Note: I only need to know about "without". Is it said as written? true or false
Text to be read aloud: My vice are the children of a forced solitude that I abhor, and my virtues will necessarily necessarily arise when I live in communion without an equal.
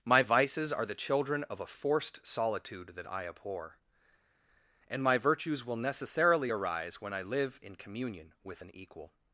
false